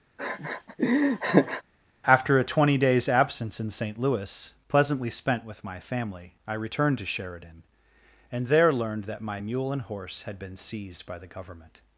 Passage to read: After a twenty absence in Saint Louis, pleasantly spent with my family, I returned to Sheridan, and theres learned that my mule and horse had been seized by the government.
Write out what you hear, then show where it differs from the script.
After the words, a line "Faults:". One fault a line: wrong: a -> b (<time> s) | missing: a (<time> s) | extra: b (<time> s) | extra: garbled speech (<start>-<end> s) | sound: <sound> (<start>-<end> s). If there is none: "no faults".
After a twenty days absence in Saint Louis, pleasantly spent with my family, I returned to Sheridan, and there learned that my mule and horse had been seized by the government.
Faults:
sound: laugh (0.2-1.6 s)
extra: days (2.8 s)
wrong: theres -> there (8.4 s)